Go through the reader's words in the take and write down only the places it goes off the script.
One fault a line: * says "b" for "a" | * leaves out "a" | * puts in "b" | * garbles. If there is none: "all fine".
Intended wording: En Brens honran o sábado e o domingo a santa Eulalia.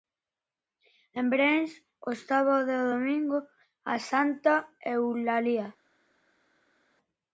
* leaves out "honran"